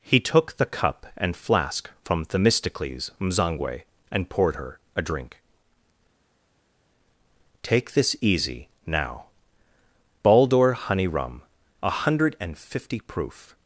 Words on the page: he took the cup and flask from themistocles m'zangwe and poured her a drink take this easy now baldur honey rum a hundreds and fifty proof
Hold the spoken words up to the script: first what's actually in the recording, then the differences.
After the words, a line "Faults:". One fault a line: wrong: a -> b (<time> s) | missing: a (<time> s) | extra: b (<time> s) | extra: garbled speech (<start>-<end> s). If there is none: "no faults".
he took the cup and flask from themistocles m'zangwe and poured her a drink take this easy now baldur honey rum a hundred and fifty proof
Faults:
wrong: hundreds -> hundred (11.9 s)